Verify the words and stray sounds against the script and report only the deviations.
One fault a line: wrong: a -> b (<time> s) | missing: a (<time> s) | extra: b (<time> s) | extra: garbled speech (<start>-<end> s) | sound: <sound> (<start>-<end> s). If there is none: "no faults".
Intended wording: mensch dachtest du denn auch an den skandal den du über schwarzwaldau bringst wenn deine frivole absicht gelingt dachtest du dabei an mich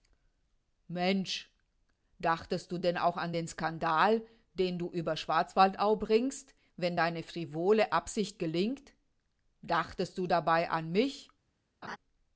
sound: laugh (11.8-12.0 s)